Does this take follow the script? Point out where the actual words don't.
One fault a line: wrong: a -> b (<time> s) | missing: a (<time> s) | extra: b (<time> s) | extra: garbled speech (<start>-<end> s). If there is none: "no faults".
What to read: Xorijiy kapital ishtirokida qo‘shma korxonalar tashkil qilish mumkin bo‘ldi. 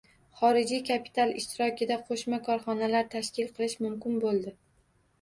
no faults